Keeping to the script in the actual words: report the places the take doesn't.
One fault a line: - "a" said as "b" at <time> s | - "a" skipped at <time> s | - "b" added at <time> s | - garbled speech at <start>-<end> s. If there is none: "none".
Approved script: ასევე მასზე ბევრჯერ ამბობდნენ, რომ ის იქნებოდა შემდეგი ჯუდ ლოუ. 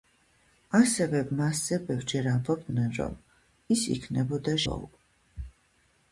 - "შემდეგი ჯუდ" skipped at 4.6 s